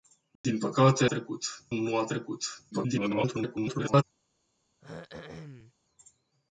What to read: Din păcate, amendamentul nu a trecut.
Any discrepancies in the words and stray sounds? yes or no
yes